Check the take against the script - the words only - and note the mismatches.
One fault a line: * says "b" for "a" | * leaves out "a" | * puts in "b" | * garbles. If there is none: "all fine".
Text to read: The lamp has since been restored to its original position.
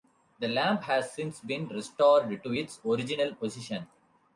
all fine